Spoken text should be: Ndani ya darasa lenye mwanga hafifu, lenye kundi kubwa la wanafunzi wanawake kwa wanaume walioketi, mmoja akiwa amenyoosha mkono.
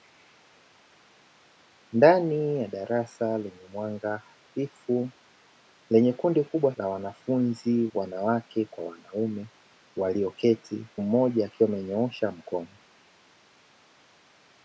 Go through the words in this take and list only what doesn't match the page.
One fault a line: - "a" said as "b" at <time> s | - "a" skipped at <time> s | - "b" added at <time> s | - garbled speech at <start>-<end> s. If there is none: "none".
none